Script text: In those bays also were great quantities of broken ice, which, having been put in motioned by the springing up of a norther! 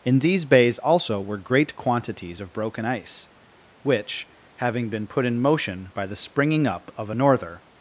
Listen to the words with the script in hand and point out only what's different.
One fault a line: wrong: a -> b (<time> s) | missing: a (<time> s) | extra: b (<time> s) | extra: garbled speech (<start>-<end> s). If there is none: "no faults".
wrong: those -> these (0.2 s)
wrong: motioned -> motion (5.4 s)